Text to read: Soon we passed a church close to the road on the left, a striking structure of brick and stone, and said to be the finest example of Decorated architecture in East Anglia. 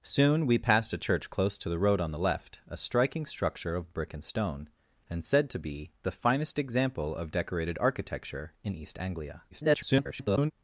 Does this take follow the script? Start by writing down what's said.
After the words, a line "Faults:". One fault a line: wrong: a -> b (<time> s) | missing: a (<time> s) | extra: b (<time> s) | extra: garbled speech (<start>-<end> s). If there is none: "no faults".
Soon we passed a church close to the road on the left, a striking structure of brick and stone, and said to be the finest example of Decorated architecture in East Anglia. [garbled]
Faults:
extra: garbled speech (9.5-10.5 s)